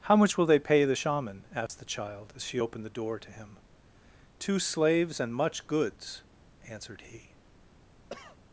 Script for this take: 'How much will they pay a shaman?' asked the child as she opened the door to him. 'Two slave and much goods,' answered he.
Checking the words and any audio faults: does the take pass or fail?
fail